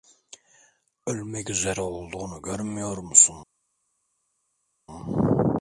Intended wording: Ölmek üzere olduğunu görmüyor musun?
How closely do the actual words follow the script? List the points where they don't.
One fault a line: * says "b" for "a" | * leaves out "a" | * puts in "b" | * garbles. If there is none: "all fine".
all fine